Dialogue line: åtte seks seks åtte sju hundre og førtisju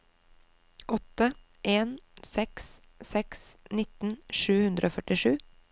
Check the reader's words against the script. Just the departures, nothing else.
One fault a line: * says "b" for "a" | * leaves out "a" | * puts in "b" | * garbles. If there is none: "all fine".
* puts in "en"
* says "nitten" for "åtte"